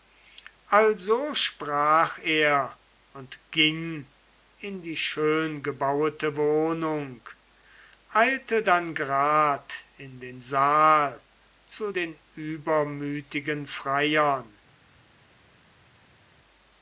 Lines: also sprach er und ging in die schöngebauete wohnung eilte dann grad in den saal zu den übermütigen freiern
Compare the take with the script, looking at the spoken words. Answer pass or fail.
pass